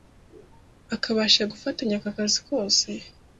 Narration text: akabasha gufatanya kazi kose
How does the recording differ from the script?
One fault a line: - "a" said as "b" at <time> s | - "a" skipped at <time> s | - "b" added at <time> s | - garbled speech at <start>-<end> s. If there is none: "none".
- "aka" added at 2.0 s